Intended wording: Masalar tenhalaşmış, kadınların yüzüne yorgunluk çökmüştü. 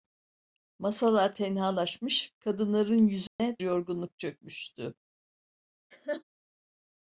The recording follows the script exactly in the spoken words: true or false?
true